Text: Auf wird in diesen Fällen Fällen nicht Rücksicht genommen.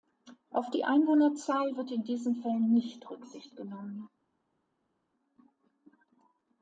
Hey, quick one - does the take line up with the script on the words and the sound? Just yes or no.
no